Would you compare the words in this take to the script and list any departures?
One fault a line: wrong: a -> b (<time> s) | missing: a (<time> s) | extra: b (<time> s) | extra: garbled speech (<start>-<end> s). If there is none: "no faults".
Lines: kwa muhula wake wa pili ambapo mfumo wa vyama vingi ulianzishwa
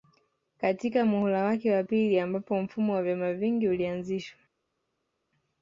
wrong: kwa -> katika (0.6 s)